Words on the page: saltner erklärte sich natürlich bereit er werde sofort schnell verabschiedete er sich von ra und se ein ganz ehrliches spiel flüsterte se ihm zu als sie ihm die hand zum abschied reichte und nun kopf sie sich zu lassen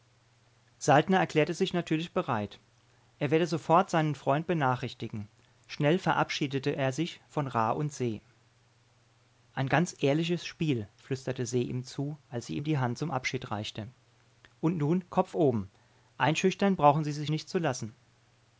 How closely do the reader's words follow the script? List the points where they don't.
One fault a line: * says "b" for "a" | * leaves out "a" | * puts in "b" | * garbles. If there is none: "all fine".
* puts in "seinen freund benachrichtigen"
* puts in "oben einschüchtern brauchen"
* puts in "nicht"